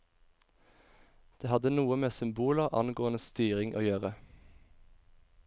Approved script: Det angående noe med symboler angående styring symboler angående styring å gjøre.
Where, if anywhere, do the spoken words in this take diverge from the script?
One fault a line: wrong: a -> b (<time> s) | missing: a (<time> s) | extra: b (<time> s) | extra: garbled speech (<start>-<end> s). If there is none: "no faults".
wrong: angående -> hadde (1.5 s)
missing: symboler angående styring (3.8 s)